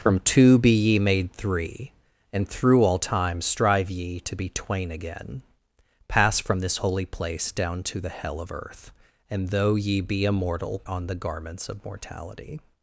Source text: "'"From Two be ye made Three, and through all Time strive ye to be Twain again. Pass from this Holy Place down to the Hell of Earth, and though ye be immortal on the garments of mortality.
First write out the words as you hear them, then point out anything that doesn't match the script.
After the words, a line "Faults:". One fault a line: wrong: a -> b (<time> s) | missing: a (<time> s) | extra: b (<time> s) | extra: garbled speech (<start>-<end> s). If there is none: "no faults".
"'"From Two be ye made Three, and through all Time strive ye to be Twain again. Pass from this Holy Place down to the Hell of Earth, and though ye be immortal on the garments of mortality.
Faults:
no faults